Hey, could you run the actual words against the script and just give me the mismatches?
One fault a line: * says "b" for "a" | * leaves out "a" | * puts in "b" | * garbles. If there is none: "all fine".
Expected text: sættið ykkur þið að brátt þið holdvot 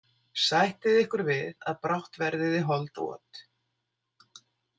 * says "við" for "þið"
* puts in "verðið"